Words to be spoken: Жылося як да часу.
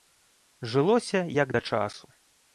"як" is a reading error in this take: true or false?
false